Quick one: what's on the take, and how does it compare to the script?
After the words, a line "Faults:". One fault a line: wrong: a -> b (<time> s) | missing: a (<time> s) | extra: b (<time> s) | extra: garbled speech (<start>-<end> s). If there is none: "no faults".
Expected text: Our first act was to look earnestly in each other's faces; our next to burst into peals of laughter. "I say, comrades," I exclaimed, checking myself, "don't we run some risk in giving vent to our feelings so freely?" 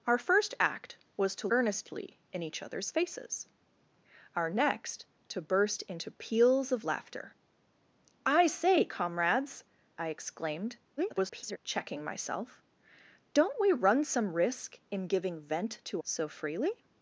Our first act was to earnestly in each other's faces; our next to burst into peals of laughter. "I say, comrades," I exclaimed, [garbled] checking myself, "don't we run some risk in giving vent to so freely?"
Faults:
missing: look (1.5 s)
extra: garbled speech (11.0-11.6 s)
missing: our feelings (16.0 s)